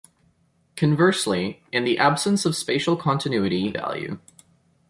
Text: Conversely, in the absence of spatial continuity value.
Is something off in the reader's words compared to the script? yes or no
no